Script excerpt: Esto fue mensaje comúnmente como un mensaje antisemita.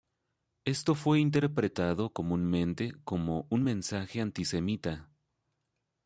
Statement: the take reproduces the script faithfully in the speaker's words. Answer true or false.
false